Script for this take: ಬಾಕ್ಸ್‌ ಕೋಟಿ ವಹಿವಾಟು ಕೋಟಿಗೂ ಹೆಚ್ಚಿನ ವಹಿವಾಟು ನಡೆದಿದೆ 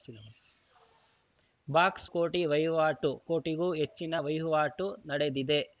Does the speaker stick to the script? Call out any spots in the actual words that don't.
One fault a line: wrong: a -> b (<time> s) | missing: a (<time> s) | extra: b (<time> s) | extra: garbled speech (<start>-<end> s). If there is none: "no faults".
no faults